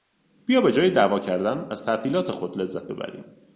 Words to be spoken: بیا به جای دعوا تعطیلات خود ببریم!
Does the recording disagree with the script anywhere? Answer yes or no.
yes